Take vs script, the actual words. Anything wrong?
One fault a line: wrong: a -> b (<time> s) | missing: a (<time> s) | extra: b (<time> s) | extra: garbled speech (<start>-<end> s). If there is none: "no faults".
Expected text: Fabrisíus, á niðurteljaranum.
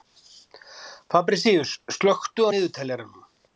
extra: slökktu (2.0 s)